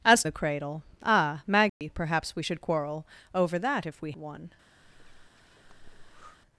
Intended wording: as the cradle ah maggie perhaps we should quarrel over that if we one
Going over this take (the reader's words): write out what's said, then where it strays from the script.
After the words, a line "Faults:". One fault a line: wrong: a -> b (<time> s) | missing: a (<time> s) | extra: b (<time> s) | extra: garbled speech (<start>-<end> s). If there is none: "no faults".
as the cradle ah maggie perhaps we should quarrel over that if we one
Faults:
no faults